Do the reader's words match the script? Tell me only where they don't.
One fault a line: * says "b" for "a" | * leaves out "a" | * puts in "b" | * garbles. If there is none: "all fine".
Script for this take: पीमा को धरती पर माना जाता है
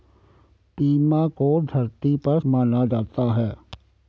all fine